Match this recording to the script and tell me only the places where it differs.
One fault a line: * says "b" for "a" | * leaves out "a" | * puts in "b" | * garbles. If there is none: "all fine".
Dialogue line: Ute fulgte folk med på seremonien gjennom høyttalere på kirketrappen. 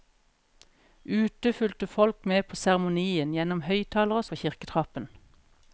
all fine